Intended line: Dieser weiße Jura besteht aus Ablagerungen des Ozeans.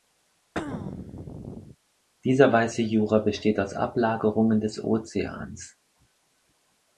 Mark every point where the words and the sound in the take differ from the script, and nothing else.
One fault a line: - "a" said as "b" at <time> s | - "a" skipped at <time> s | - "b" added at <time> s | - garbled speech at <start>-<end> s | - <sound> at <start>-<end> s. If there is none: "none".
- throat clearing at 0.5-1.8 s